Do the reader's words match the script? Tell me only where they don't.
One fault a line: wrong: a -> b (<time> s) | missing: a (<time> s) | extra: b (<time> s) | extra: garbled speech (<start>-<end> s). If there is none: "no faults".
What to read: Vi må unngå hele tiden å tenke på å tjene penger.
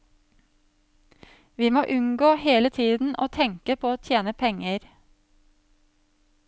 no faults